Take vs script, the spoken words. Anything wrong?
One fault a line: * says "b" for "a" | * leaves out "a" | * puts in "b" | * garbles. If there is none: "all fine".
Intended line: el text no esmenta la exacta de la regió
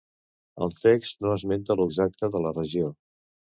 all fine